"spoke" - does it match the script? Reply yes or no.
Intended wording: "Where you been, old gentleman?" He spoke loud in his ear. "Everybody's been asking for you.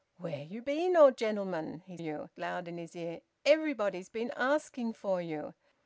no